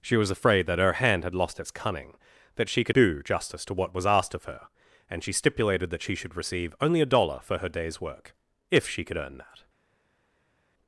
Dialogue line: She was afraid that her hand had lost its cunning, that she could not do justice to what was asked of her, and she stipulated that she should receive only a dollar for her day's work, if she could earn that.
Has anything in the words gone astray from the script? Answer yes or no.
yes